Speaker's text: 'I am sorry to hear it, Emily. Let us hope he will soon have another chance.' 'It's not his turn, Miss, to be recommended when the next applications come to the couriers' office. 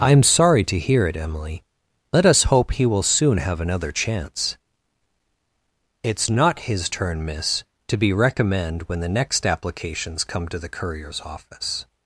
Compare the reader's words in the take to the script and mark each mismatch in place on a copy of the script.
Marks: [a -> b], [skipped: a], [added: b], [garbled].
'I am sorry to hear it, Emily. Let us hope he will soon have another chance.' 'It's not his turn, Miss, to be [recommended -> recommend] when the next applications come to the couriers' office.